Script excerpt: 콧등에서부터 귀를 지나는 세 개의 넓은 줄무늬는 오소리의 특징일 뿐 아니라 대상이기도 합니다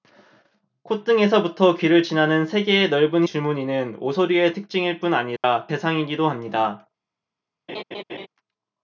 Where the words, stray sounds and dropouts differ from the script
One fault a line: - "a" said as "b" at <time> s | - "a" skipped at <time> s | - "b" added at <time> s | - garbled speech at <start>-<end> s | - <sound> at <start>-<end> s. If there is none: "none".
- dropout at 5.4-5.4 s
- laugh at 7.7-8.3 s